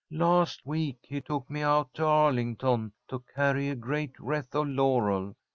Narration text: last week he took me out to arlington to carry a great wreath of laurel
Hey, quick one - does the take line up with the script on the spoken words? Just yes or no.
yes